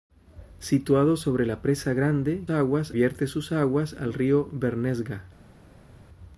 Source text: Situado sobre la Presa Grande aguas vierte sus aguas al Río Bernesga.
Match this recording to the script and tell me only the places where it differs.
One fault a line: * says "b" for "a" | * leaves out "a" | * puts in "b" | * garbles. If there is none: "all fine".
all fine